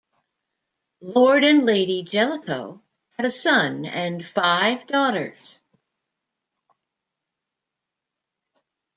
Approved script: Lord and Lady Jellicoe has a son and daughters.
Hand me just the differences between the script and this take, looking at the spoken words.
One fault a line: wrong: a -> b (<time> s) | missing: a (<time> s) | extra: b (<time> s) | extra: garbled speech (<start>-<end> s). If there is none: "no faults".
wrong: has -> had (3.2 s)
extra: five (4.3 s)